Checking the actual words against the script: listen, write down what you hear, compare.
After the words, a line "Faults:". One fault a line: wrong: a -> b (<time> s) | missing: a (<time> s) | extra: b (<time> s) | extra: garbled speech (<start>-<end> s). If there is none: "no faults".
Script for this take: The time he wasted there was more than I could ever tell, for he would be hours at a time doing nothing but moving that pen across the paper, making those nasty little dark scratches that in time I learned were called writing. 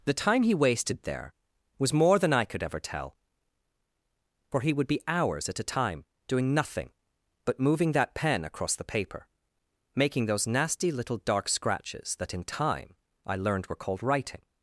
The time he wasted there was more than I could ever tell, for he would be hours at a time doing nothing but moving that pen across the paper, making those nasty little dark scratches that in time I learned were called writing.
Faults:
no faults